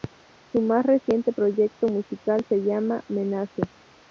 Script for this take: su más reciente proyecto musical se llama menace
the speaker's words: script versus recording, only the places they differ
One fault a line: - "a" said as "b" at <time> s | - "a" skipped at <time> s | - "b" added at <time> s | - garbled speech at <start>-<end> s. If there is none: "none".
none